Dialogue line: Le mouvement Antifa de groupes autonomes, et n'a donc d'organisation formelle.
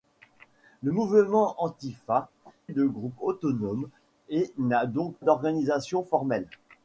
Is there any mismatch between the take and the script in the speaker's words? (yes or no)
no